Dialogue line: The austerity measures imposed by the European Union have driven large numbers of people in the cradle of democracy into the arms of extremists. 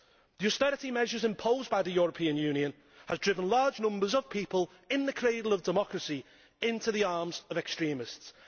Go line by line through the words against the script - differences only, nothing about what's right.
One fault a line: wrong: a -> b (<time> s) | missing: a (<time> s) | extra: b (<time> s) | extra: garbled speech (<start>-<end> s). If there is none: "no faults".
no faults